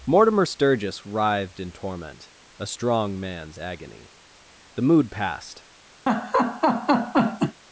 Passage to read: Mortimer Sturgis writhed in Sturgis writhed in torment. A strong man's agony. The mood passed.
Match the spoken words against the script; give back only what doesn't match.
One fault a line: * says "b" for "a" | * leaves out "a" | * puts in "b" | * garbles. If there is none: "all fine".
* leaves out "Sturgis writhed in"